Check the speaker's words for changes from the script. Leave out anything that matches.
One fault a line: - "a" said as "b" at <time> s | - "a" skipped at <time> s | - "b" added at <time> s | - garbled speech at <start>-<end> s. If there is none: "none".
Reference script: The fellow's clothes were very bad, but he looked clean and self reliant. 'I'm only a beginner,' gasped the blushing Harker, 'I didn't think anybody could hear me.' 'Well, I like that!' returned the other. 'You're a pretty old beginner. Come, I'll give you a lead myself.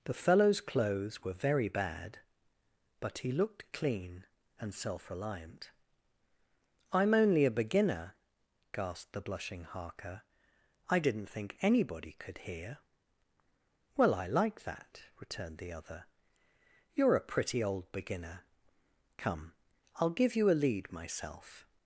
- "me" skipped at 12.8 s